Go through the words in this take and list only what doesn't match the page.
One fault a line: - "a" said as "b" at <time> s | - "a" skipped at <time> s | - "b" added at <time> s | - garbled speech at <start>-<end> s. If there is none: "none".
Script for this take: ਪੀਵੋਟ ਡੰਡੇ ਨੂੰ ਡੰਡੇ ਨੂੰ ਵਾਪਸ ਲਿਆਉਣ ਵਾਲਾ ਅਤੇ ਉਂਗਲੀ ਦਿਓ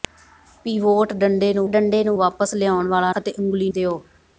none